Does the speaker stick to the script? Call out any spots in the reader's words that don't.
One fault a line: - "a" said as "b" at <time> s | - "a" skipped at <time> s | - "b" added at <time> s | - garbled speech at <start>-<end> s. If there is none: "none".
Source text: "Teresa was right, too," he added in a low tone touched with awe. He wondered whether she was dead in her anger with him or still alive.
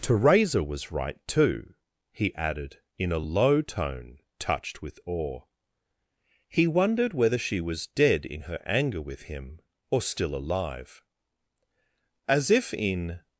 - "As if in" added at 12.3 s